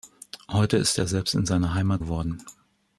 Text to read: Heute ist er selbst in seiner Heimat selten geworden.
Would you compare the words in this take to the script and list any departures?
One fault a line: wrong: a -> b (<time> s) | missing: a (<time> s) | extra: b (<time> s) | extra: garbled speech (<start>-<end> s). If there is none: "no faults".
missing: selten (2.0 s)